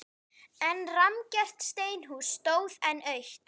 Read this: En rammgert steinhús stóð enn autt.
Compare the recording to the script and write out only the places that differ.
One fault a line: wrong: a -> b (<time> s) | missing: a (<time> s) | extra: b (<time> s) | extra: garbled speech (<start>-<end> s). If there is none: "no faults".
no faults